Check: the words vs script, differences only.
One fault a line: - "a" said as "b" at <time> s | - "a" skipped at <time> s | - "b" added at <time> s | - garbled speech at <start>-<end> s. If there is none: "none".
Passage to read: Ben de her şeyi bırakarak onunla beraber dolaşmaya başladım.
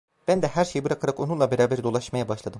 none